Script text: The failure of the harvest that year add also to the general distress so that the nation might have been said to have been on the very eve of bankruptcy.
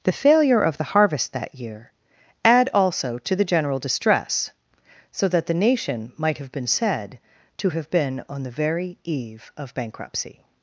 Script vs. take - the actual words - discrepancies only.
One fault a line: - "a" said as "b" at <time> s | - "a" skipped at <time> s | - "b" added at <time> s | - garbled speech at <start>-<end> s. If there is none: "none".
none